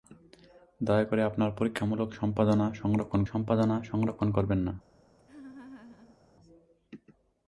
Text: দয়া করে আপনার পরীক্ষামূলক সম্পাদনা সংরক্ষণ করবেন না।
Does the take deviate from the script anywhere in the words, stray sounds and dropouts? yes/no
yes